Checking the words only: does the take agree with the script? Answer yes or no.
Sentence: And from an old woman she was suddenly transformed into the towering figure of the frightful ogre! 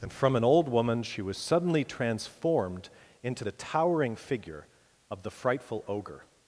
yes